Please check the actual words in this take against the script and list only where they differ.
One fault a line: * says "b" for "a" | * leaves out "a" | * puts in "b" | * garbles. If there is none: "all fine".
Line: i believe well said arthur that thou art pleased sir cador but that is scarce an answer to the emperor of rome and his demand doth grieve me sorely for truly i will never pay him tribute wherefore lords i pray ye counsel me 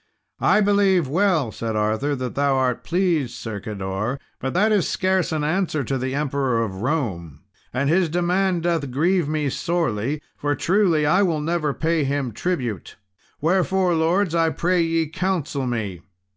all fine